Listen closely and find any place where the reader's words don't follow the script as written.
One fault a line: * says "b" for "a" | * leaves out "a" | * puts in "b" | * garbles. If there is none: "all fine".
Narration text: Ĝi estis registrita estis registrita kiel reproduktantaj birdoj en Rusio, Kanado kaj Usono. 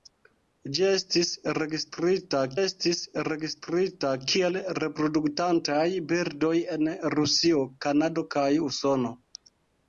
all fine